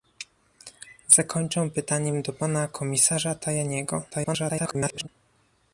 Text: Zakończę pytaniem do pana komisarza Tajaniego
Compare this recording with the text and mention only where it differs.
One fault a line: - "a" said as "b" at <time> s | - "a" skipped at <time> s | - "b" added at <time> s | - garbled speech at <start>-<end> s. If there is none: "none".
- garbled speech at 4.1-5.1 s